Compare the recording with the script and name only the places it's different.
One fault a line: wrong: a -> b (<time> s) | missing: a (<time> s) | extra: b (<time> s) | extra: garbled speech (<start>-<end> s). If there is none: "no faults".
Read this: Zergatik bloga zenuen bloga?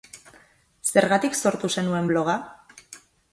wrong: bloga -> sortu (1.4 s)